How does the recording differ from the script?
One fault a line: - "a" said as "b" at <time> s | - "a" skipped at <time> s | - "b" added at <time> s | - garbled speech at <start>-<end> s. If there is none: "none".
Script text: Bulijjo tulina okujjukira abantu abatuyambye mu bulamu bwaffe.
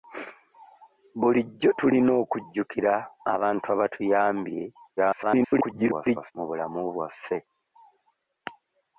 - garbled speech at 5.0-6.3 s